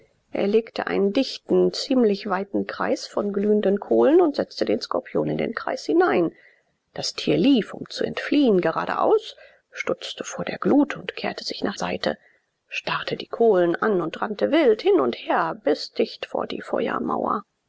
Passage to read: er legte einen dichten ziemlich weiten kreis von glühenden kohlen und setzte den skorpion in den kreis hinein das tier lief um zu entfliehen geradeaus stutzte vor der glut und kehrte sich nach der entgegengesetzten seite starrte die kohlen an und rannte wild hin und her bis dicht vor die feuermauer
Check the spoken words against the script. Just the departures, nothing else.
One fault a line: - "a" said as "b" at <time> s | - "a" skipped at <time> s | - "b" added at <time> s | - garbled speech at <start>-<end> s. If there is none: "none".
- "der entgegengesetzten" skipped at 11.8 s